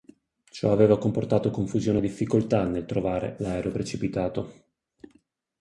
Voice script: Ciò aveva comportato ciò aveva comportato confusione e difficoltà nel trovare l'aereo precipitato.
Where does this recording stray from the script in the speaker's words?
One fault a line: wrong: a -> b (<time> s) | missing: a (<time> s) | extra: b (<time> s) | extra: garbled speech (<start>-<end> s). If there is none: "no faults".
missing: ciò aveva comportato (1.5 s)